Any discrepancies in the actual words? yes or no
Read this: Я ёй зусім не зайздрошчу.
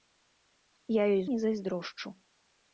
yes